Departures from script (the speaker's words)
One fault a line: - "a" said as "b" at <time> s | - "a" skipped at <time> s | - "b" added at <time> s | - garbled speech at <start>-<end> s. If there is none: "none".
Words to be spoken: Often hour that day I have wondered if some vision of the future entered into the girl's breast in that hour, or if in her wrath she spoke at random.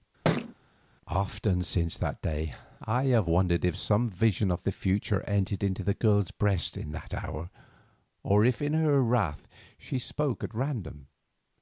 - "hour" said as "since" at 1.6 s